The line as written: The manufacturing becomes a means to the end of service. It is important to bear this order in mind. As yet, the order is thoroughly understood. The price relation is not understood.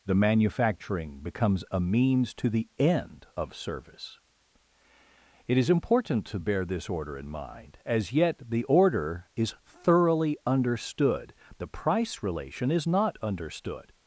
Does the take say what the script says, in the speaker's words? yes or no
yes